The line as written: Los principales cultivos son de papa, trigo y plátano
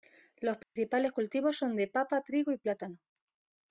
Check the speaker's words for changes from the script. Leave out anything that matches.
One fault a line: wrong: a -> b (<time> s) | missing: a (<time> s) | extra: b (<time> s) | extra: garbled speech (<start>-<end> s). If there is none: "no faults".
no faults